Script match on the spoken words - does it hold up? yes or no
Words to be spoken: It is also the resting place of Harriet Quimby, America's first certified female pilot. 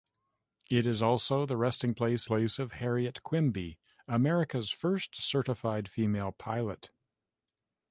no